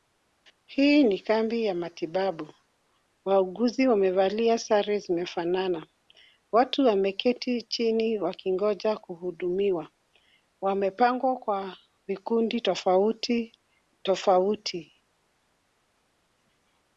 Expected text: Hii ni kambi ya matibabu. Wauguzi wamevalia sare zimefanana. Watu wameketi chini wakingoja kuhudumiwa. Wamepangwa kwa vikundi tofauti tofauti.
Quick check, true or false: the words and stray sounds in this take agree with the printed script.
true